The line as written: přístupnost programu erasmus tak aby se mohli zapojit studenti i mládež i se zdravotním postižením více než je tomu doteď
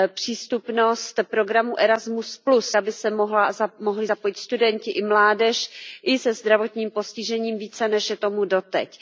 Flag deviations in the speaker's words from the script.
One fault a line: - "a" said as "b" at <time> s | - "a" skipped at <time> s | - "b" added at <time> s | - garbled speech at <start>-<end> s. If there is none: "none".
- "tak" skipped at 2.4 s